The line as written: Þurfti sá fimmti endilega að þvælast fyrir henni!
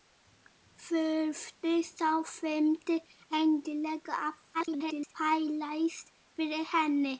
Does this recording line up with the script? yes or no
no